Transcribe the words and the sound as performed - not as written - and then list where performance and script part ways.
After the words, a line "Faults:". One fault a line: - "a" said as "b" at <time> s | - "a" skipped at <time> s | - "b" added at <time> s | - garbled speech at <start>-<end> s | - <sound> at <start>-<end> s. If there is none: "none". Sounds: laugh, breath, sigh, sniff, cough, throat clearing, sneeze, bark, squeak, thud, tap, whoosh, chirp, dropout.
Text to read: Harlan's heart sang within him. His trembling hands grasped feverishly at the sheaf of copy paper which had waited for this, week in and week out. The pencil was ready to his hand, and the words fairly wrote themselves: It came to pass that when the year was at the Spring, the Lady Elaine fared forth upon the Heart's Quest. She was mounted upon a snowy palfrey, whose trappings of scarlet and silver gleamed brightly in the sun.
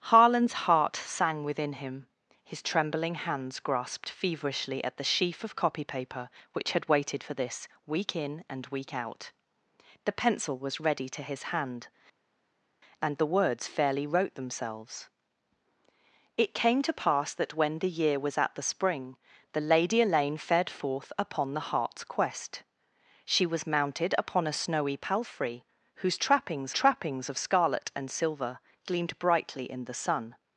Harlan's heart sang within him. His trembling hands grasped feverishly at the sheaf of copy paper which had waited for this, week in and week out. The pencil was ready to his hand, and the words fairly wrote themselves: It came to pass that when the year was at the Spring, the Lady Elaine fared forth upon the Heart's Quest. She was mounted upon a snowy palfrey, whose trappings trappings of scarlet and silver gleamed brightly in the sun.
Faults:
- "trappings" added at 26.7 s